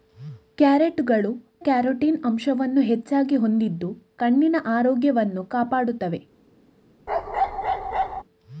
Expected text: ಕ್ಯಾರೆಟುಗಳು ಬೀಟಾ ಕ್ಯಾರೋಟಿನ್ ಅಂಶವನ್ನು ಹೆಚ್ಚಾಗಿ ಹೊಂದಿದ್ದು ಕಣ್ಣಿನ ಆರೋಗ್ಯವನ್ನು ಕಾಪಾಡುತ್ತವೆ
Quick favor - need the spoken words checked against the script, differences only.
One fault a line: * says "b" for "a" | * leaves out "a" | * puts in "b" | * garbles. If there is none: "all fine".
* leaves out "ಬೀಟಾ"